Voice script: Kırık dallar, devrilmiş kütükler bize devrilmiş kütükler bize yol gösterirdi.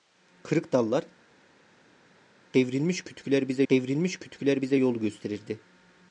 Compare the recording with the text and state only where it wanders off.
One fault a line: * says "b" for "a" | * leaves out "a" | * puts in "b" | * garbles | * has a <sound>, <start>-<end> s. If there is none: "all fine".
all fine